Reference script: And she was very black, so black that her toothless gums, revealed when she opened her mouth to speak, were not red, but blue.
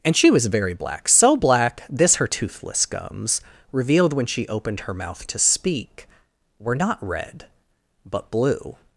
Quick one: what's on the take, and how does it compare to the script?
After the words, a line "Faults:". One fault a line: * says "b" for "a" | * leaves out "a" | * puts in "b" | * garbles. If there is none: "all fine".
And she was very black, so black this her toothless gums, revealed when she opened her mouth to speak, were not red, but blue.
Faults:
* says "this" for "that"